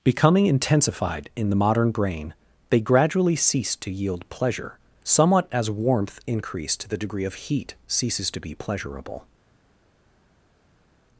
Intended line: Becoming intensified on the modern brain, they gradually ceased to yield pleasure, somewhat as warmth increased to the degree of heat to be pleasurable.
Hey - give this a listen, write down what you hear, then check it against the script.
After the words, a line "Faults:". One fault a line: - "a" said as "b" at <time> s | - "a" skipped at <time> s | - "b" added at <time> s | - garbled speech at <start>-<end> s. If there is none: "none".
Becoming intensified in the modern brain, they gradually ceased to yield pleasure, somewhat as warmth increased to the degree of heat ceases to be pleasurable.
Faults:
- "on" said as "in" at 1.4 s
- "ceases" added at 7.8 s